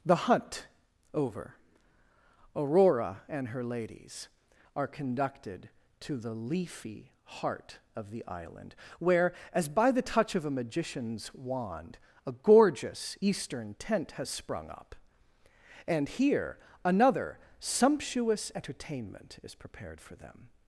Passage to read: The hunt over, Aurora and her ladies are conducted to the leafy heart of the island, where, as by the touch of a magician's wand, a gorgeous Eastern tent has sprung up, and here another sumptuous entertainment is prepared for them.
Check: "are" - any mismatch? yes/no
no